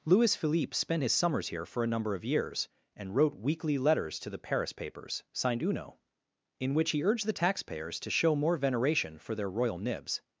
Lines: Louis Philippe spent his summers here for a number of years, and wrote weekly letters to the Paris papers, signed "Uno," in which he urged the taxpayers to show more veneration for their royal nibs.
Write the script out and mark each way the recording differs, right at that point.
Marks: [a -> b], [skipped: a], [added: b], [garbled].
Louis Philippe spent his summers here for a number of years, and wrote weekly letters to the Paris papers, signed "Uno," in which he urged the taxpayers to show more veneration for their royal nibs.